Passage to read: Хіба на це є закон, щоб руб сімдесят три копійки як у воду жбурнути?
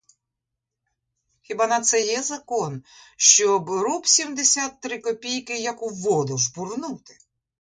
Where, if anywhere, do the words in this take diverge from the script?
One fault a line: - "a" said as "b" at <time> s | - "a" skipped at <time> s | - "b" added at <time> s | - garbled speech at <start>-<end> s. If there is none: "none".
none